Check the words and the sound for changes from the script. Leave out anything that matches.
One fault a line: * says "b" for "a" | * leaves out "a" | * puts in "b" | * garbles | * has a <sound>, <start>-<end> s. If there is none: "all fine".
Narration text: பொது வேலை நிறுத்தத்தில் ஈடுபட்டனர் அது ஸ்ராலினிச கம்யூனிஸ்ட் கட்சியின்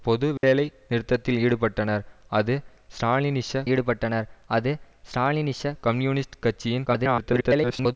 * has a dropout, 0.4-0.4 s
* puts in "ஈடுபட்டனர் அது ஸ்ராலினிச"
* garbles